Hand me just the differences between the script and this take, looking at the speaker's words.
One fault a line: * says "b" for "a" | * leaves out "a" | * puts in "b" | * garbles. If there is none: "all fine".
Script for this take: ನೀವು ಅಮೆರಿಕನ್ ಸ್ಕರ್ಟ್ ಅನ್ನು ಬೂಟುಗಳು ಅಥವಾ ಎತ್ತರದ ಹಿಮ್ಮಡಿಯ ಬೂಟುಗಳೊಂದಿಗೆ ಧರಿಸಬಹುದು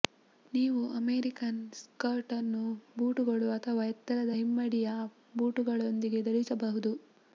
all fine